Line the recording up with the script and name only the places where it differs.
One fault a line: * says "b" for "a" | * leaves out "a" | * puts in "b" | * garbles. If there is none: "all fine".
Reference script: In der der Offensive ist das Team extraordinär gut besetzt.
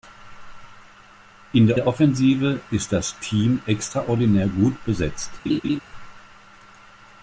all fine